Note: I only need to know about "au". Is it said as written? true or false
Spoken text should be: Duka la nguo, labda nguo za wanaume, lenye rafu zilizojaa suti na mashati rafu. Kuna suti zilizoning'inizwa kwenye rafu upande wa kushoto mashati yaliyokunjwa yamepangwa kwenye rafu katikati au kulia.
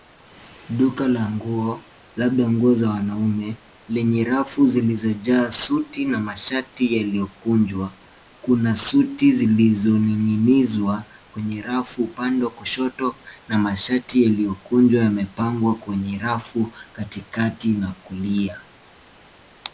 false